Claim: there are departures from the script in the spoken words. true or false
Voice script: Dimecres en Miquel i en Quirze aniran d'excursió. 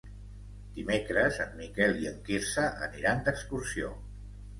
false